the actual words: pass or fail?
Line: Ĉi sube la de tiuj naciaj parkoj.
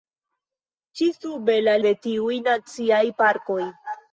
pass